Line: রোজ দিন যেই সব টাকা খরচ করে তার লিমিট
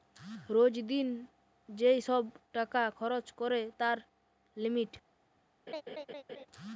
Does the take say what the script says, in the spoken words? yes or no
yes